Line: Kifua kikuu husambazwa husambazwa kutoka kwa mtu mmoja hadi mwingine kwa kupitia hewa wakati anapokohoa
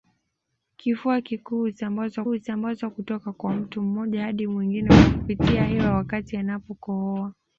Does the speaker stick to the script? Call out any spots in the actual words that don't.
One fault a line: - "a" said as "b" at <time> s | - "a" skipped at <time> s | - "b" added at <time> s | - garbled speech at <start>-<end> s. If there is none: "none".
none